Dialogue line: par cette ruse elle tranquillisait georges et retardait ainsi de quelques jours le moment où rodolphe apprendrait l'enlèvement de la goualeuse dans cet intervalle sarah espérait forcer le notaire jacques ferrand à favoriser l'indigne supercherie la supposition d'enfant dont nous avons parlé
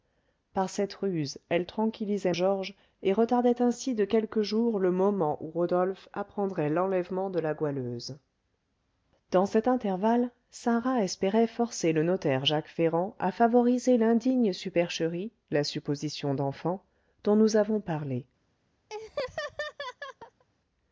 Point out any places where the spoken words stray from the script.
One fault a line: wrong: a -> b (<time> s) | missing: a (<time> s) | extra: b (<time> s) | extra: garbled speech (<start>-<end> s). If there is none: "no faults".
no faults